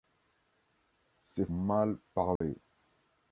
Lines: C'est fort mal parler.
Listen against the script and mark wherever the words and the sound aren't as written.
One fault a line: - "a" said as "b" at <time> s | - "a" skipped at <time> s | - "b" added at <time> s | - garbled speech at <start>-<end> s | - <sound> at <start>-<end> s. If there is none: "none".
- "fort" skipped at 1.4 s
- dropout at 2.4-2.4 s